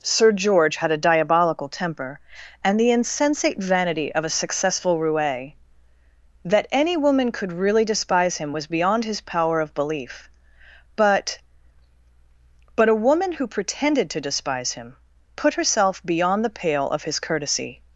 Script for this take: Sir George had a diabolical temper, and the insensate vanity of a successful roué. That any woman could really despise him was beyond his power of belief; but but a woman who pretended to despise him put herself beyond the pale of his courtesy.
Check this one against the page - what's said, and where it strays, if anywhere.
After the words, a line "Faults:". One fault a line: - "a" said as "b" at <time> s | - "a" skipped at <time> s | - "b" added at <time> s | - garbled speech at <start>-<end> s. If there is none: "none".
Sir George had a diabolical temper, and the insensate vanity of a successful roué. That any woman could really despise him was beyond his power of belief; but but a woman who pretended to despise him put herself beyond the pale of his courtesy.
Faults:
none